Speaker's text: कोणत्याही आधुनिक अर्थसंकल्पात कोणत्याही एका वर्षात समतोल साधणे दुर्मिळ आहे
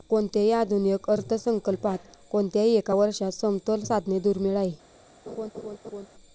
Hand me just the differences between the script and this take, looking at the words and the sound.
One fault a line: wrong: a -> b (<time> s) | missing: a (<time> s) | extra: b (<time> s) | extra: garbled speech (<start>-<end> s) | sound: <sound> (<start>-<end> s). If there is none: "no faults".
sound: laugh (5.3-6.1 s)